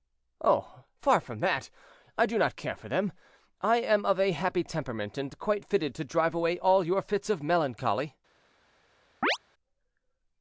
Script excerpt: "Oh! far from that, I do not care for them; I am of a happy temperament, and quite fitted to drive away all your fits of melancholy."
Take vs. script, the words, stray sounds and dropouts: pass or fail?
fail